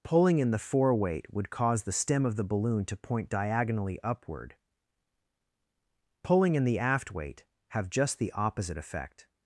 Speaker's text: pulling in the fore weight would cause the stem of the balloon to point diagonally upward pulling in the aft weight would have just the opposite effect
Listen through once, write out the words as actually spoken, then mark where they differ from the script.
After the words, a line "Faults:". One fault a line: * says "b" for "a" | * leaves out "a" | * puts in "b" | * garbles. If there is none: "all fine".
pulling in the fore weight would cause the stem of the balloon to point diagonally upward pulling in the aft weight have just the opposite effect
Faults:
* leaves out "would"